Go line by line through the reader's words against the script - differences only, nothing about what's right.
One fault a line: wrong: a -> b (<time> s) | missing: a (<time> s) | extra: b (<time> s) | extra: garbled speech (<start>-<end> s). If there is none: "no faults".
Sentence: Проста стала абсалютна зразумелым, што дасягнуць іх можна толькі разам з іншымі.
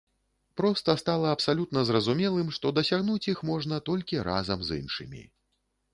no faults